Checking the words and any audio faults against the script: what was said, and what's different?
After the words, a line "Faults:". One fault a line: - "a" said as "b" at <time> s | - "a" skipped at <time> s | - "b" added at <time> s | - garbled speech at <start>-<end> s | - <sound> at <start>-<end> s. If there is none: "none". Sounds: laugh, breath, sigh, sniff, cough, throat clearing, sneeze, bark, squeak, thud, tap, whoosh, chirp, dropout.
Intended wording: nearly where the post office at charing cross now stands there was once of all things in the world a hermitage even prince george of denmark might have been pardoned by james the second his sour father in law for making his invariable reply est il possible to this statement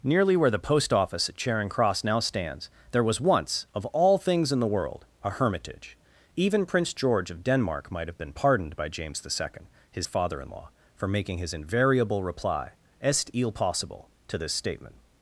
nearly where the post office at charing cross now stands there was once of all things in the world a hermitage even prince george of denmark might have been pardoned by james the second his father in law for making his invariable reply est il possible to this statement
Faults:
- "sour" skipped at 10.1 s